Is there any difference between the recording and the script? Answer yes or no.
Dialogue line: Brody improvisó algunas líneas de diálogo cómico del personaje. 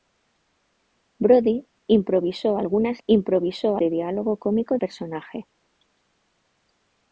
yes